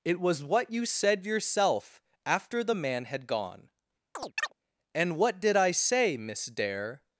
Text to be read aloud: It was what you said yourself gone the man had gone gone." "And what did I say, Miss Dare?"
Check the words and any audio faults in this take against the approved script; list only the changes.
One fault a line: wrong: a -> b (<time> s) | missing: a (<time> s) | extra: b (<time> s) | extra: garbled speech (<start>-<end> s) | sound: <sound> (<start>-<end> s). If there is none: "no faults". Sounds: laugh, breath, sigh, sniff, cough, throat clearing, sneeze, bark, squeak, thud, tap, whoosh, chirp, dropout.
wrong: gone -> after (2.2 s)
missing: gone (3.7 s)
sound: chirp (4.1-4.5 s)